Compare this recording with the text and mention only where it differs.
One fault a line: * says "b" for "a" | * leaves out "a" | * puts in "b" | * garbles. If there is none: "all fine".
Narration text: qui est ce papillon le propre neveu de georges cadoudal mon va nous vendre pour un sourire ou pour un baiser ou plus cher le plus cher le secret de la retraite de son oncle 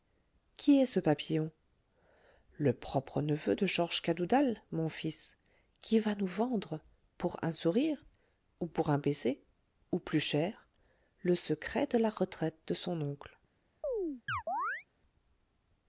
* puts in "fils qui"
* leaves out "plus cher le"